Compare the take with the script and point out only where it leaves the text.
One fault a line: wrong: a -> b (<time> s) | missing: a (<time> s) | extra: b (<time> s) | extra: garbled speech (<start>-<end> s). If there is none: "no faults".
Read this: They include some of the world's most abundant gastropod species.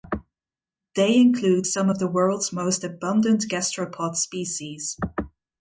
no faults